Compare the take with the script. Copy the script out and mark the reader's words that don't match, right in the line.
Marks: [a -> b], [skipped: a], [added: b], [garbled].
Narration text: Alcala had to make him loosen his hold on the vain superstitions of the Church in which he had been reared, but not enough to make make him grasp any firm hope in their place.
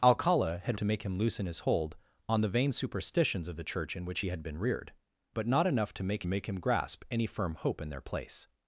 Alcala had to make him loosen his hold on the vain superstitions of the Church in which he had been reared, but not enough to make make him grasp any firm hope in their place.